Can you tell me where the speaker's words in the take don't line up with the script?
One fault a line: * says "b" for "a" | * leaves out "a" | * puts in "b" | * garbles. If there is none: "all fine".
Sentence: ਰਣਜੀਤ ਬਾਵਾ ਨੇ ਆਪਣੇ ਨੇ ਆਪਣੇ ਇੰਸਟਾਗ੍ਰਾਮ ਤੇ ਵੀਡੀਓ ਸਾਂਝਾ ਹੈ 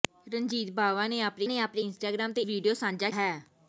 all fine